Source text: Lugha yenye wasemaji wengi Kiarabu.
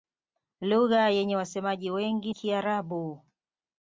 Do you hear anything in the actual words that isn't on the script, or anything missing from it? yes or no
no